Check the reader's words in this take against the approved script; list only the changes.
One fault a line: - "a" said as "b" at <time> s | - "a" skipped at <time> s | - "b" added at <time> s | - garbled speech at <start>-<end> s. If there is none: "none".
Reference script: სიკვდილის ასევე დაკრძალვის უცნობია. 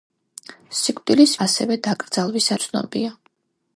none